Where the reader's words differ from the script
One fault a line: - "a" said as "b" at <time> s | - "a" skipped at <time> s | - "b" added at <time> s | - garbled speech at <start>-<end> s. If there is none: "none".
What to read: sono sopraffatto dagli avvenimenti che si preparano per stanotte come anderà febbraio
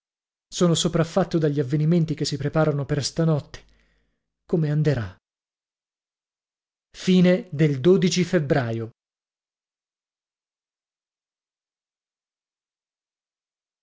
none